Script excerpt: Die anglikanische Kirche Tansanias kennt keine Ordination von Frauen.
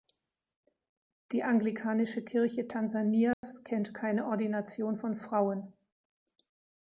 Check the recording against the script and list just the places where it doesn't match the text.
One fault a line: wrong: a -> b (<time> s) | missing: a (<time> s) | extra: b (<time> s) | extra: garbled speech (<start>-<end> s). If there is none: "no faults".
no faults